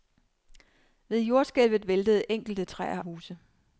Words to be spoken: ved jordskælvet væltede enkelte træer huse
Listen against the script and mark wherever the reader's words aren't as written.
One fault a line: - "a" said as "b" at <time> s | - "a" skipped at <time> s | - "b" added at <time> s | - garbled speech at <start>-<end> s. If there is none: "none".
none